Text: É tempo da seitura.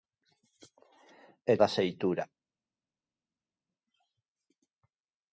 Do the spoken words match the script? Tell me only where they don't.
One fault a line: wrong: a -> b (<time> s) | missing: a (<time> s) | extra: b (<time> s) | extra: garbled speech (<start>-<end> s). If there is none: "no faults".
missing: tempo (1.6 s)